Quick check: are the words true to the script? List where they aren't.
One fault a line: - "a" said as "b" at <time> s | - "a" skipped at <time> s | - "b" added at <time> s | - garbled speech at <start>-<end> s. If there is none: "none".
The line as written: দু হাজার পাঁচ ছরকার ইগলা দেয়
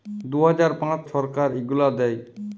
none